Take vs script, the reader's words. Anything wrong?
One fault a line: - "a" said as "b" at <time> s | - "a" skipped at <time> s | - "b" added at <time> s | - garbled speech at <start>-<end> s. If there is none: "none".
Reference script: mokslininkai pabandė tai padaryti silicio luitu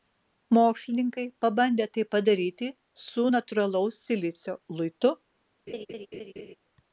- "su natūralaus" added at 3.0 s